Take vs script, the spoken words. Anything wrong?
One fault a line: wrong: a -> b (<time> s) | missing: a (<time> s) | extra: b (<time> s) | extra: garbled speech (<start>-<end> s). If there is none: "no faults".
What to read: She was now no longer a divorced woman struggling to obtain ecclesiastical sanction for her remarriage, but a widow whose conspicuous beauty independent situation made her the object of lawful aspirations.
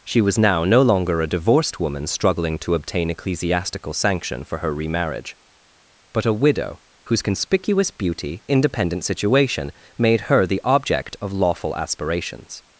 no faults